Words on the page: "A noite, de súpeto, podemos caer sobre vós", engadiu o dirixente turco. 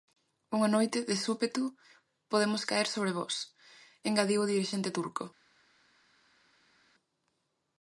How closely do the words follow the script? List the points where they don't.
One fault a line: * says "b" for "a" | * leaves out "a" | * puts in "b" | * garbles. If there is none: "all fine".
* says "Unha" for "A"